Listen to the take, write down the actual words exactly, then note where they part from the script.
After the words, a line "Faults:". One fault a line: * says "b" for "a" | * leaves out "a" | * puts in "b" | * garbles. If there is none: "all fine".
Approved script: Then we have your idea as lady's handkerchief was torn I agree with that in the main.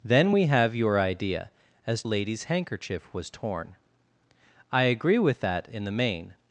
Then we have your idea as lady's handkerchief was torn I agree with that in the main.
Faults:
all fine